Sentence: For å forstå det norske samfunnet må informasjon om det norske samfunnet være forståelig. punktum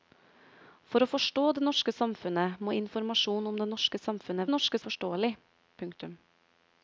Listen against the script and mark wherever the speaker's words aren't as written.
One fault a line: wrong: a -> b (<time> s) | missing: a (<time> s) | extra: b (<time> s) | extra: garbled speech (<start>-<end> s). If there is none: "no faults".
wrong: være -> norske (4.5 s)